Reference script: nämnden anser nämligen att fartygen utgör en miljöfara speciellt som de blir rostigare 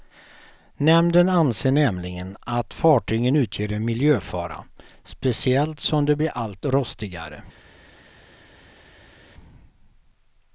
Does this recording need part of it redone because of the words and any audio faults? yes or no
yes